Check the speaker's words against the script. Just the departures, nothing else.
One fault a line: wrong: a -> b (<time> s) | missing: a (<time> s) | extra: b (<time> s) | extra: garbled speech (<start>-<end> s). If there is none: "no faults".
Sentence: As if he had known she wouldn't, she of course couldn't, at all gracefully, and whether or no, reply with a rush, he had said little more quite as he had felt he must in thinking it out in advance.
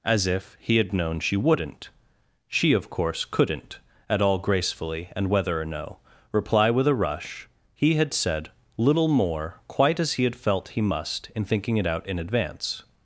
no faults